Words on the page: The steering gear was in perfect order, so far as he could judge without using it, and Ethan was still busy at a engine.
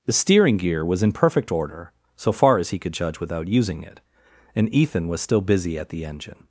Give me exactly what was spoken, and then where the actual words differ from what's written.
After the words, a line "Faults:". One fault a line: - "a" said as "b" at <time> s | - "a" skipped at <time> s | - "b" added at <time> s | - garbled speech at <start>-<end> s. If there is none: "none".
The steering gear was in perfect order, so far as he could judge without using it, and Ethan was still busy at the engine.
Faults:
- "a" said as "the" at 5.9 s